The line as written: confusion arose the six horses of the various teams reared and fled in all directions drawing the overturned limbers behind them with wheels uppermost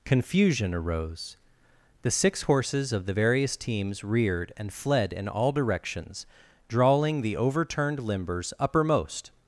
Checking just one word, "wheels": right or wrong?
wrong